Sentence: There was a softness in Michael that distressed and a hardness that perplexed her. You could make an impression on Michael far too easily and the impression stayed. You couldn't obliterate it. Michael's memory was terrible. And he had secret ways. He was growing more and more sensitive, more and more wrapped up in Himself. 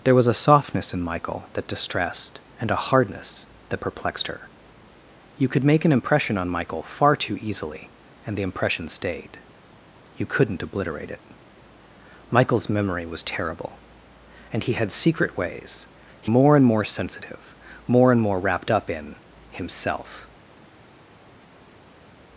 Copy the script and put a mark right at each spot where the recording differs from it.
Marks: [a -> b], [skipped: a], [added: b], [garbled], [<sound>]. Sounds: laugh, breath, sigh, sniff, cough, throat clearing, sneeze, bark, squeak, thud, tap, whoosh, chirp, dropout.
There was a softness in Michael that distressed and a hardness that perplexed her. You could make an impression on Michael far too easily and the impression stayed. You couldn't obliterate it. Michael's memory was terrible. And he had secret ways. He [skipped: was growing] more and more sensitive, more and more wrapped up in Himself.